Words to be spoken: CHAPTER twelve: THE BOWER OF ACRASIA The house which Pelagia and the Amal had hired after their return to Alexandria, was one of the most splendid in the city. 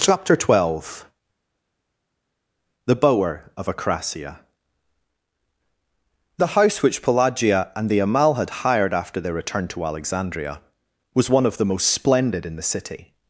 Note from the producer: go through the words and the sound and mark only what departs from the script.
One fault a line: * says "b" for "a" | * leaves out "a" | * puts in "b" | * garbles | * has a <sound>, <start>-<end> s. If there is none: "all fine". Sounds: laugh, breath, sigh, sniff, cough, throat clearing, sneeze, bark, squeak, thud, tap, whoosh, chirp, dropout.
all fine